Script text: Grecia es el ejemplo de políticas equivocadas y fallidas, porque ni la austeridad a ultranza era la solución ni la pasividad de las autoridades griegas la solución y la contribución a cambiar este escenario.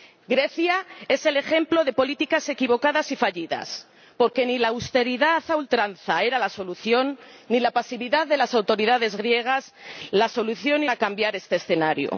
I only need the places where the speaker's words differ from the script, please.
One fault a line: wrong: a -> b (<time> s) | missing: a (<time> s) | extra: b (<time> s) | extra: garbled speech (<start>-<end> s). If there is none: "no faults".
missing: la contribución (10.9 s)